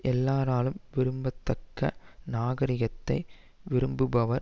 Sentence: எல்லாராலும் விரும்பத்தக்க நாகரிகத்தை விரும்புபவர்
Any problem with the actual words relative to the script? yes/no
no